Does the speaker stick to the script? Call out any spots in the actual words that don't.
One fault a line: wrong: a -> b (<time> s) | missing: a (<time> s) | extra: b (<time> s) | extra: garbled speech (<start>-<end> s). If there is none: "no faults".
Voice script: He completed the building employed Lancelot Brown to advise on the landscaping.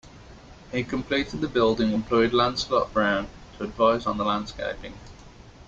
no faults